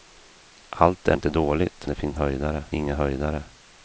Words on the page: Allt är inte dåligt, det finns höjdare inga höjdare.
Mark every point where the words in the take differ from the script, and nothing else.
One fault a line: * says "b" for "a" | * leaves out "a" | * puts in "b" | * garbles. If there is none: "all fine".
all fine